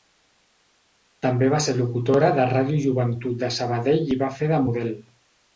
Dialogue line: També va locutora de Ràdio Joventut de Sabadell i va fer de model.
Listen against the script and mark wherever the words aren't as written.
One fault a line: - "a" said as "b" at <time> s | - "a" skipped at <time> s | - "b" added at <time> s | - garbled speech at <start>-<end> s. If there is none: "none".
- "ser" added at 1.6 s